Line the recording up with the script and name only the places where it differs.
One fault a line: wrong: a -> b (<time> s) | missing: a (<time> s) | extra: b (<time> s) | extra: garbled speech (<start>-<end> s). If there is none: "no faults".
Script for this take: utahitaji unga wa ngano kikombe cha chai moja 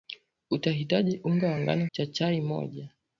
missing: kikombe (1.9 s)